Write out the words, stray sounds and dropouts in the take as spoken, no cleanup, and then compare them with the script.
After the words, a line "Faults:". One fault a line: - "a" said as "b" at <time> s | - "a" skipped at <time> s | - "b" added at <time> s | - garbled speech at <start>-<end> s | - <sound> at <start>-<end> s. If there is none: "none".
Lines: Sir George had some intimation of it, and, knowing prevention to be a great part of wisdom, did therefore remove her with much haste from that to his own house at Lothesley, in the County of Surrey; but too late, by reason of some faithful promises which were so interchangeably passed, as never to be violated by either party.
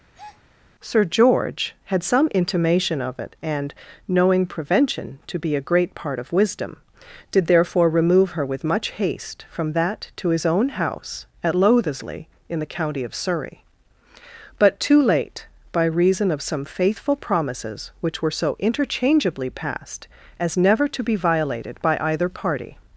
Sir George had some intimation of it, and, knowing prevention to be a great part of wisdom, did therefore remove her with much haste from that to his own house at Lothesley, in the County of Surrey; but too late, by reason of some faithful promises which were so interchangeably passed, as never to be violated by either party.
Faults:
- breath at 0.1-0.4 s